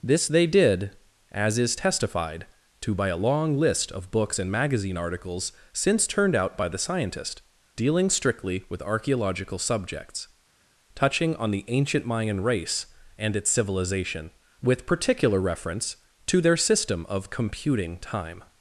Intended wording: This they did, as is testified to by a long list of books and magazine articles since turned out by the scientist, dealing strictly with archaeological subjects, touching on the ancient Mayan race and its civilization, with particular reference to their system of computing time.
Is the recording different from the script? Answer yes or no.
no